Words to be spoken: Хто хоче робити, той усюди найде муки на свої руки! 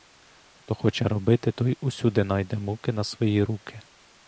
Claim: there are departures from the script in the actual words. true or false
false